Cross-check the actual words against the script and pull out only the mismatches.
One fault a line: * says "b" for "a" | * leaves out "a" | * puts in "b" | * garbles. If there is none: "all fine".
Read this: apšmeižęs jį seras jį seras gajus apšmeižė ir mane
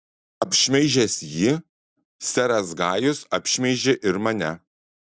* leaves out "jį seras"